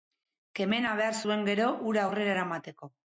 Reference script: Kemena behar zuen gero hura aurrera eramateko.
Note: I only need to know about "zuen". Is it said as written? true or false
true